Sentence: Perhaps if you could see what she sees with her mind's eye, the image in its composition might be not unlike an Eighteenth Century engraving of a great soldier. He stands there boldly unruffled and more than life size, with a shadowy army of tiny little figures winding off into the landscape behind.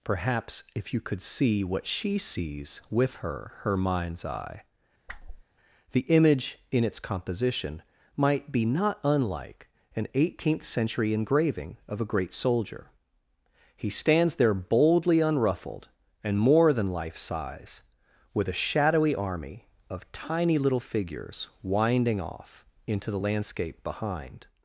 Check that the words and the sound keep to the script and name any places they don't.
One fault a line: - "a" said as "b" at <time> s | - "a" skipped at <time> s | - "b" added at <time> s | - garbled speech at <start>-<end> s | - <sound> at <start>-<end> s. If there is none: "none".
- "her" added at 3.6 s
- whoosh at 5.1-5.4 s